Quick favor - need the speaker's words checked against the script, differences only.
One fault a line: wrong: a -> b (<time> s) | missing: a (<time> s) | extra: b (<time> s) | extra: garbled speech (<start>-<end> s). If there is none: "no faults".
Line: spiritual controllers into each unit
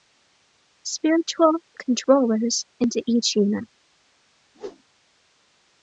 no faults